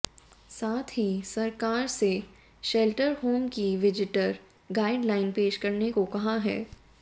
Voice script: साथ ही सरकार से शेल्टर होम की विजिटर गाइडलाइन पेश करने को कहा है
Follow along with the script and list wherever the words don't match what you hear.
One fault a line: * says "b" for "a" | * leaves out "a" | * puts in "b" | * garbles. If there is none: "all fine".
all fine